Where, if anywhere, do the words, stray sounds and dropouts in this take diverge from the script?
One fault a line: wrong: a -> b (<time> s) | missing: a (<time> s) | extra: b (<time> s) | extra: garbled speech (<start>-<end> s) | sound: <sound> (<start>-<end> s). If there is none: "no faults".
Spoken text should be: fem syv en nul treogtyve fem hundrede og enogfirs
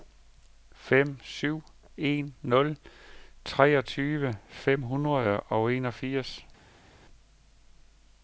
no faults